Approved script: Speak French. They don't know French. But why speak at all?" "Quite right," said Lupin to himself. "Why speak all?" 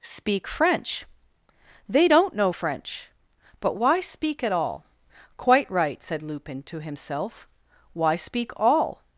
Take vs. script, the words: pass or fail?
pass